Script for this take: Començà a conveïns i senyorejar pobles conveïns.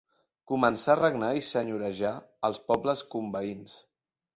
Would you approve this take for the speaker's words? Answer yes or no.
no